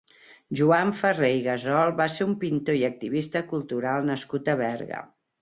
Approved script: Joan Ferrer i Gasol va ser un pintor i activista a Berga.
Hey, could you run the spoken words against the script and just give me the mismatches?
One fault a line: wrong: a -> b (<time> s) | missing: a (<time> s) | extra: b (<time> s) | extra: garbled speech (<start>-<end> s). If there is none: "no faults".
extra: cultural nascut (3.5 s)